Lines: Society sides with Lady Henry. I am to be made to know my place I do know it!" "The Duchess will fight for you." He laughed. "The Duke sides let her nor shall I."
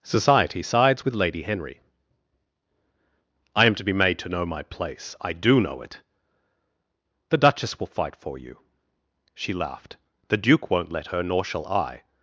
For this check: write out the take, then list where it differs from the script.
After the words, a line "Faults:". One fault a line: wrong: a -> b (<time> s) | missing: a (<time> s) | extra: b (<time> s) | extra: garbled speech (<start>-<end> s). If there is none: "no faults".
Society sides with Lady Henry. I am to be made to know my place I do know it!" "The Duchess will fight for you." She laughed. "The Duke won't let her nor shall I."
Faults:
wrong: He -> She (9.3 s)
wrong: sides -> won't (10.7 s)